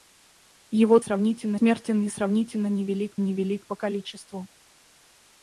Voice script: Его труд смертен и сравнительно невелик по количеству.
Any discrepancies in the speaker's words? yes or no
yes